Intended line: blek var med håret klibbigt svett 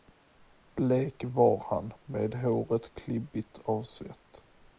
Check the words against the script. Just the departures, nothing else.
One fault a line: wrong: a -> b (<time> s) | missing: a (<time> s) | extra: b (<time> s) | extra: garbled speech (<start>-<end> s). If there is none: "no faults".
extra: han (1.7 s)
extra: av (3.6 s)